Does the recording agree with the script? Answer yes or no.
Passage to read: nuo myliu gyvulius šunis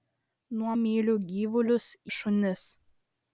yes